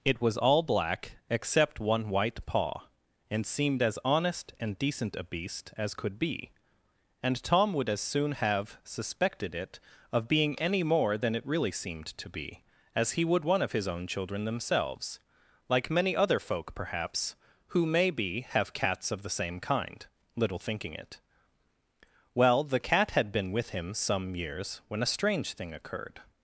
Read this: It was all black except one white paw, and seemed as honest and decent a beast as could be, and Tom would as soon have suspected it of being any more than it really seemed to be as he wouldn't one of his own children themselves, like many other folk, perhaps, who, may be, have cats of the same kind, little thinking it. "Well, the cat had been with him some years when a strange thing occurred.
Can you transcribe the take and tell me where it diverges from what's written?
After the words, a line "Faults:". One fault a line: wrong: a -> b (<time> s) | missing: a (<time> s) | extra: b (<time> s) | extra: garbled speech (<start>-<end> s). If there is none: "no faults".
It was all black except one white paw, and seemed as honest and decent a beast as could be, and Tom would as soon have suspected it of being any more than it really seemed to be as he would one of his own children themselves, like many other folk, perhaps, who, may be, have cats of the same kind, little thinking it. "Well, the cat had been with him some years when a strange thing occurred.
Faults:
wrong: wouldn't -> would (13.2 s)